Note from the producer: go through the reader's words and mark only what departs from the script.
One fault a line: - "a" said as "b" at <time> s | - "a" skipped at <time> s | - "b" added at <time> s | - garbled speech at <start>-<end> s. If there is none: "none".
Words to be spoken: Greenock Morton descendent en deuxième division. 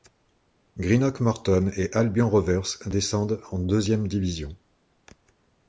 - "et Albion Rovers" added at 1.8 s